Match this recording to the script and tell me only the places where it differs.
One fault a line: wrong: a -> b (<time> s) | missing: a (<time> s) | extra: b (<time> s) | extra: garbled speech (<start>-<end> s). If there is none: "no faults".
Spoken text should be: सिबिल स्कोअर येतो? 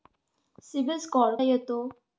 no faults